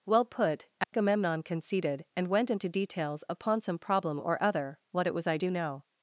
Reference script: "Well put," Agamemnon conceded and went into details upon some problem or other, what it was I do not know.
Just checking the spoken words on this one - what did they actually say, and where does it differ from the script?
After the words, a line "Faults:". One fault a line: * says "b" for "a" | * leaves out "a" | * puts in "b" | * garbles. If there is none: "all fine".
"Well put," Agamemnon conceded and went into details upon some problem or other, what it was I do know.
Faults:
* leaves out "not"